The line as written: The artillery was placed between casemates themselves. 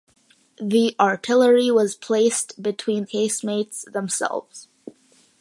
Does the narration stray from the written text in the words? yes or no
no